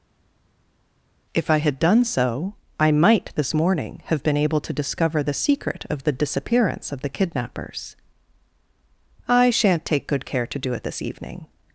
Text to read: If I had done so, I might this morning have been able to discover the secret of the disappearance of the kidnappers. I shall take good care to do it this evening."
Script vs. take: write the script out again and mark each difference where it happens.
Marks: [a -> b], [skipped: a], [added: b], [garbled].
If I had done so, I might this morning have been able to discover the secret of the disappearance of the kidnappers. I [shall -> shan't] take good care to do it this evening."